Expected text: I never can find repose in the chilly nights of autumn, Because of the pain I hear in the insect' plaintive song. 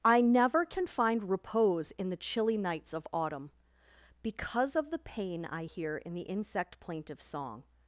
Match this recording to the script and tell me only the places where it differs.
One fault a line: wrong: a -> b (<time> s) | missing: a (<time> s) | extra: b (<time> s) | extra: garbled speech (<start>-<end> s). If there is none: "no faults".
no faults